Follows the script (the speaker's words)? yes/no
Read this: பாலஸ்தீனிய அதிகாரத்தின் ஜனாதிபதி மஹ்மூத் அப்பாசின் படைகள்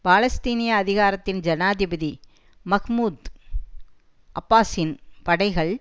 yes